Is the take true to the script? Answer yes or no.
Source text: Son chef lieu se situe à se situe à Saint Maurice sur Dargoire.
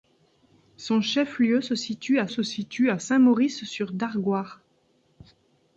yes